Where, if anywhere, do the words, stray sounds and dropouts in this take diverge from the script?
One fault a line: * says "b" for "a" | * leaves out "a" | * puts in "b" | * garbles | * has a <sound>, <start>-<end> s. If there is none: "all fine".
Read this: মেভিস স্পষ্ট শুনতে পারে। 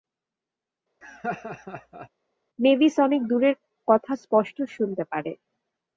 * has a laugh, 1.0-2.1 s
* puts in "অনেক দূরের কথা"